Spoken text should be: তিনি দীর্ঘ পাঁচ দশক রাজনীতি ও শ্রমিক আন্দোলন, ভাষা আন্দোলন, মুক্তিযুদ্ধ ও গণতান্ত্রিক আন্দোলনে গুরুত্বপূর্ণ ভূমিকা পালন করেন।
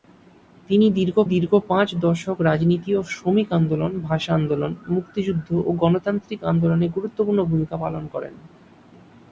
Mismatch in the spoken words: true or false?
true